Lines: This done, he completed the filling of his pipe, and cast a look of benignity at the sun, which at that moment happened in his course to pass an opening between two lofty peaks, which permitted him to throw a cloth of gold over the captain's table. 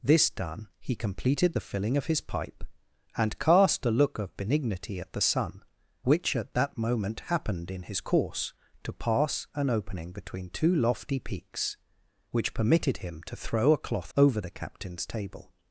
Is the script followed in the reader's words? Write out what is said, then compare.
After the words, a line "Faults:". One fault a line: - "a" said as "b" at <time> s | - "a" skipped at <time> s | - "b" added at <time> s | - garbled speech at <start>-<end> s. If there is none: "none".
This done, he completed the filling of his pipe, and cast a look of benignity at the sun, which at that moment happened in his course to pass an opening between two lofty peaks, which permitted him to throw a cloth over the captain's table.
Faults:
- "of gold" skipped at 14.1 s